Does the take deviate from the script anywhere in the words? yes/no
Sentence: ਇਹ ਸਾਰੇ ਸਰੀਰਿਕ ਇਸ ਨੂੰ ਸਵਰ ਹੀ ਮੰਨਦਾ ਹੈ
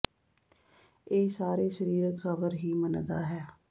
yes